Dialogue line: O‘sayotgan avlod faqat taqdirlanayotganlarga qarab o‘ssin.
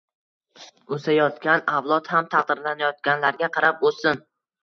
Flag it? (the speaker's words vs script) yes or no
yes